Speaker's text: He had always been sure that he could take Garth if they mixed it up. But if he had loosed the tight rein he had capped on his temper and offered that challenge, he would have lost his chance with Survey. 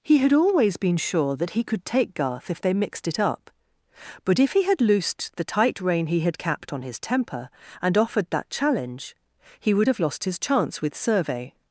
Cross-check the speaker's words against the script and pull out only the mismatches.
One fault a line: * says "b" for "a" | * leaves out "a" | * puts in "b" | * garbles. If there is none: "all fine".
all fine